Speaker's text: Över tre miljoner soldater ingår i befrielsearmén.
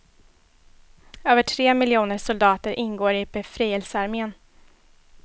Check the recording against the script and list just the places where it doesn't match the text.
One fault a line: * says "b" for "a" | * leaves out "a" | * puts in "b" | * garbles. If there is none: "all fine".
all fine